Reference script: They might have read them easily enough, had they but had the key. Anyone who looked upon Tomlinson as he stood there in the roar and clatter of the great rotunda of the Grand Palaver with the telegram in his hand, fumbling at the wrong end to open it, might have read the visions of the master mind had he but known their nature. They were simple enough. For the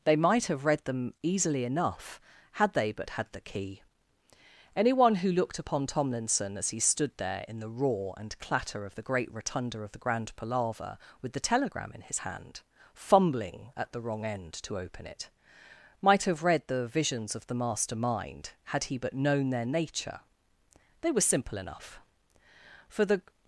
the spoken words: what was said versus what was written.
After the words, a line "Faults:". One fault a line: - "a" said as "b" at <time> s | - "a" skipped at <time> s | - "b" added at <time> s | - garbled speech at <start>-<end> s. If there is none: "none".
They might have read them easily enough, had they but had the key. Anyone who looked upon Tomlinson as he stood there in the roar and clatter of the great rotunda of the Grand Palaver with the telegram in his hand, fumbling at the wrong end to open it, might have read the visions of the master mind had he but known their nature. They were simple enough. For the
Faults:
none